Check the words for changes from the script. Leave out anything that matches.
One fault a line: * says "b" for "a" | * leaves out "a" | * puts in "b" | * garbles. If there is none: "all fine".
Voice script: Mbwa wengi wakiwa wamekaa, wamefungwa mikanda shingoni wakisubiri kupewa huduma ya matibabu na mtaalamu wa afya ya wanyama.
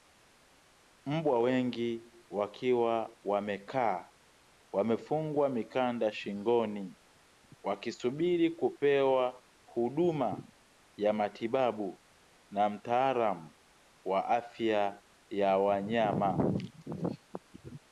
all fine